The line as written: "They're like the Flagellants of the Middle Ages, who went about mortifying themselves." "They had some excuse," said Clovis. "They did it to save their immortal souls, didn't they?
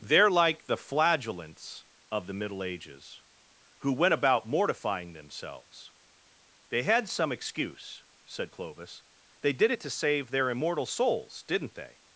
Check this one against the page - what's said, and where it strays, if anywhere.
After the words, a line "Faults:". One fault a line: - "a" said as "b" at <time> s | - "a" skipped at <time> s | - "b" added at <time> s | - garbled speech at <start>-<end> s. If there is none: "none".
"They're like the Flagellants of the Middle Ages, who went about mortifying themselves." "They had some excuse," said Clovis. "They did it to save their immortal souls, didn't they?
Faults:
none